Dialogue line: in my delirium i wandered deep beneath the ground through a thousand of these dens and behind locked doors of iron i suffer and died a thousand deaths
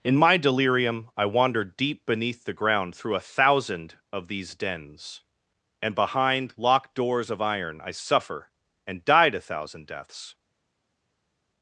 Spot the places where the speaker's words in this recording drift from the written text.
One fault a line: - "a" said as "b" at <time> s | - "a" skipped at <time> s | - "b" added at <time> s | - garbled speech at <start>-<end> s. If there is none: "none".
none